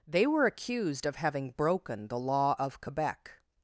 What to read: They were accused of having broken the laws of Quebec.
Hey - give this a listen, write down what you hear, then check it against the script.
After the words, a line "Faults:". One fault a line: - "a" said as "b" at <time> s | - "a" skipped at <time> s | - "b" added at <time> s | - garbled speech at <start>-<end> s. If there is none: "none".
They were accused of having broken the law of Quebec.
Faults:
- "laws" said as "law" at 2.2 s